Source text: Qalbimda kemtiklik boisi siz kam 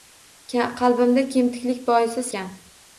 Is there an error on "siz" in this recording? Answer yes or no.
yes